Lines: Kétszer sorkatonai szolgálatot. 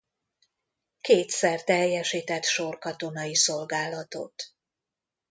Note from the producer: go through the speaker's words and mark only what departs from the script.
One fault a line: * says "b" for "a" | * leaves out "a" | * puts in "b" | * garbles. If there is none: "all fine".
* puts in "teljesített"